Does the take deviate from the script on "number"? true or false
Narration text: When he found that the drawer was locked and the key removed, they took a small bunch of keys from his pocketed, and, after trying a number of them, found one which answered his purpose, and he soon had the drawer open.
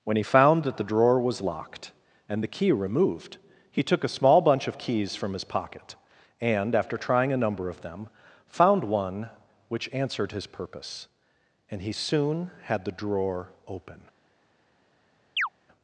false